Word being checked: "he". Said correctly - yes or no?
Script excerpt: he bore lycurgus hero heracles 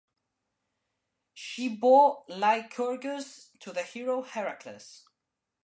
no